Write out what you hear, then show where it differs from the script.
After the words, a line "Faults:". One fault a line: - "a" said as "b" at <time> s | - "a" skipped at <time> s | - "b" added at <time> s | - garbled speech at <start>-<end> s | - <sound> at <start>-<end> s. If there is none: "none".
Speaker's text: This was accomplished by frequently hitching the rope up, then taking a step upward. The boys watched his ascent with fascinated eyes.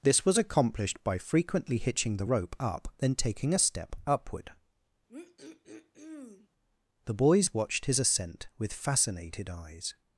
This was accomplished by frequently hitching the rope up, then taking a step upward. The boys watched his ascent with fascinated eyes.
Faults:
- throat clearing at 5.1-6.5 s